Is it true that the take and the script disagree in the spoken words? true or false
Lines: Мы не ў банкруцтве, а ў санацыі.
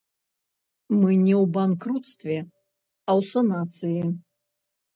false